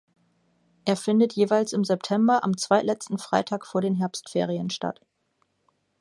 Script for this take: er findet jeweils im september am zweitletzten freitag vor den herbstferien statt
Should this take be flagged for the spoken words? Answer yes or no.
no